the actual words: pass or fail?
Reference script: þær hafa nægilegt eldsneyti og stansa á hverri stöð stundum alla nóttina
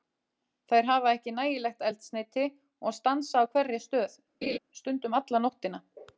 fail